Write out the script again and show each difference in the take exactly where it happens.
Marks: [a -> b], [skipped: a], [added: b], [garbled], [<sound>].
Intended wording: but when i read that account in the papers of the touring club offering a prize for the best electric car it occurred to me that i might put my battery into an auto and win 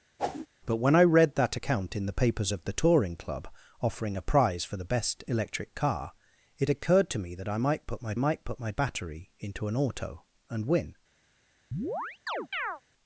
[whoosh] but when i read that account in the papers of the touring club offering a prize for the best electric car it occurred to me that i might put my [added: might put my] battery into an auto and win [chirp]